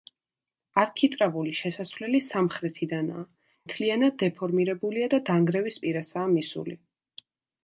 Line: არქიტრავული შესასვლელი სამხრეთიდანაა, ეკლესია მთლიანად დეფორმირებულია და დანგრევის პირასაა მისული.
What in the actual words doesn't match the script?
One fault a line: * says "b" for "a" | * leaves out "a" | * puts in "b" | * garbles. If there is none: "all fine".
* leaves out "ეკლესია"